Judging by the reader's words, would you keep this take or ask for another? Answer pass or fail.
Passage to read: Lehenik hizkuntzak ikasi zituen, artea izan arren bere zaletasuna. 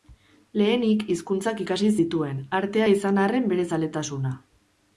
pass